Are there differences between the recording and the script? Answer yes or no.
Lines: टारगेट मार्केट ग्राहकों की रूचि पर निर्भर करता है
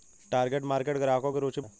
yes